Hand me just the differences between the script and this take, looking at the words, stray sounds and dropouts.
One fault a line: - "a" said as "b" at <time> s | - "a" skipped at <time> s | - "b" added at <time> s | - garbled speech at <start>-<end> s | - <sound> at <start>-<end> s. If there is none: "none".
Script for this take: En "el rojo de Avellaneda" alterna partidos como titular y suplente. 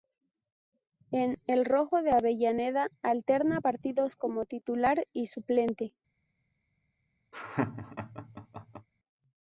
- laugh at 7.3-8.9 s